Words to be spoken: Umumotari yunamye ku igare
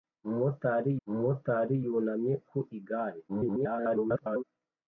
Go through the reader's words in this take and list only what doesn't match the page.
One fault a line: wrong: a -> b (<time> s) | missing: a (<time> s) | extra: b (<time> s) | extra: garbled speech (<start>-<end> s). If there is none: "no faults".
extra: umumotari (1.1 s)
extra: garbled speech (3.3-4.4 s)